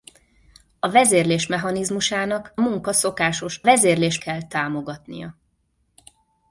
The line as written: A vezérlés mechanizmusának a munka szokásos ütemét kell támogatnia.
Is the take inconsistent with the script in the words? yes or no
yes